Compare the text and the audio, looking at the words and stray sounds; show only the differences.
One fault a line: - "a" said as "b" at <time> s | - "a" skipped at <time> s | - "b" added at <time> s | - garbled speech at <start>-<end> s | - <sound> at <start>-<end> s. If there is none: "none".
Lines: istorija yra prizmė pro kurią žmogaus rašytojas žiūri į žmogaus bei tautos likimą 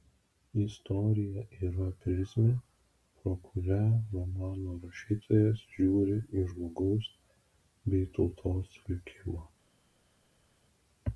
- "žmogaus" said as "romano" at 4.1 s